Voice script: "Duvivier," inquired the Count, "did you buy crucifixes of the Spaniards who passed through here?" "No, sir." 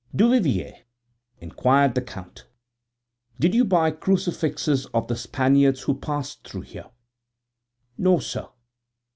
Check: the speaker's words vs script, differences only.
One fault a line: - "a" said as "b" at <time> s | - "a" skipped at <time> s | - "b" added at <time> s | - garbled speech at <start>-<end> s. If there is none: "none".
none